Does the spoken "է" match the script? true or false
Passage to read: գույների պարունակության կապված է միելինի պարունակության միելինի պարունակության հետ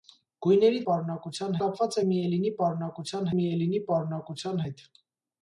true